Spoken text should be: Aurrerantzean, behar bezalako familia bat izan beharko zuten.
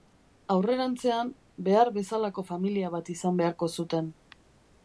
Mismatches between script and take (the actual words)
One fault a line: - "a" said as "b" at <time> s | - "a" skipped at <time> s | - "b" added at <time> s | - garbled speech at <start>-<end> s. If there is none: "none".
none